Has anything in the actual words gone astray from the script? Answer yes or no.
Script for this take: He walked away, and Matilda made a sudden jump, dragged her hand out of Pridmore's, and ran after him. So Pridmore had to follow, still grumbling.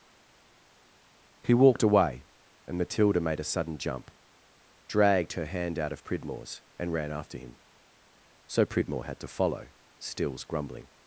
yes